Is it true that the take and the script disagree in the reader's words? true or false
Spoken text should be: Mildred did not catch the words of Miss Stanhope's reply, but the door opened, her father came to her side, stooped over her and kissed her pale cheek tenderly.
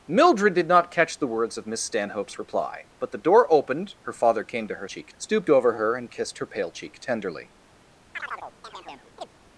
true